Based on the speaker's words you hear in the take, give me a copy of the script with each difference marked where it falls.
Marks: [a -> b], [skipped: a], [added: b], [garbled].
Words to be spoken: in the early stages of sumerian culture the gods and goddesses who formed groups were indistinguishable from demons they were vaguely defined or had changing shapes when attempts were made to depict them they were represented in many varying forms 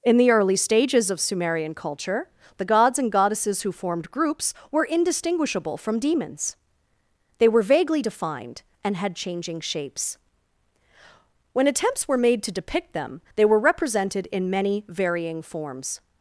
in the early stages of sumerian culture the gods and goddesses who formed groups were indistinguishable from demons they were vaguely defined [or -> and] had changing shapes when attempts were made to depict them they were represented in many varying forms